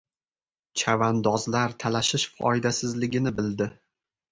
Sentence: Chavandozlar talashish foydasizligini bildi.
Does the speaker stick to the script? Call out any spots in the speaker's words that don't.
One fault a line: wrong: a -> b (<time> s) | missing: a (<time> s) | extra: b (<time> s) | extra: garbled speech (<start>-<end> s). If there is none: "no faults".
no faults